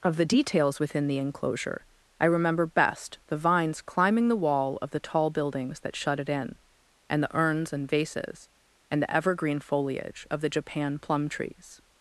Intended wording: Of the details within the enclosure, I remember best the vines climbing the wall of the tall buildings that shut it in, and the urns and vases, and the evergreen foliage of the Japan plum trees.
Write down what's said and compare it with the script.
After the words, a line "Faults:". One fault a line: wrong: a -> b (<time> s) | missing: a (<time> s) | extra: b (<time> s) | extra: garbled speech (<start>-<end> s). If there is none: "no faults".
Of the details within the enclosure, I remember best the vines climbing the wall of the tall buildings that shut it in, and the urns and vases, and the evergreen foliage of the Japan plum trees.
Faults:
no faults